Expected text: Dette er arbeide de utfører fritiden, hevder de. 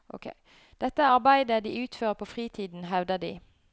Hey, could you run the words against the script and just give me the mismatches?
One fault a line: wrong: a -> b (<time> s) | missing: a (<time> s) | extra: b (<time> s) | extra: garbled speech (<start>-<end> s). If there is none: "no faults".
extra: på (2.1 s)